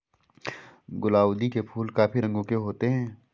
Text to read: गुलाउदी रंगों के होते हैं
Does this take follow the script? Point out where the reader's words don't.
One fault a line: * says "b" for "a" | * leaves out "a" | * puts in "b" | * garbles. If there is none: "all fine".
* puts in "के फूल काफी"